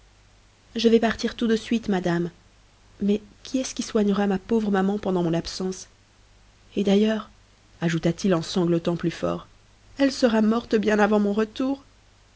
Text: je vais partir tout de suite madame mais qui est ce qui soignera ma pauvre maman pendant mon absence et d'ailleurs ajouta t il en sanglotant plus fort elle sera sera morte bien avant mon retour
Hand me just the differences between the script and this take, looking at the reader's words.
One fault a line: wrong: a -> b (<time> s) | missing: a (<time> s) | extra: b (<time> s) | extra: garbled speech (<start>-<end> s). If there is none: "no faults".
missing: sera (10.4 s)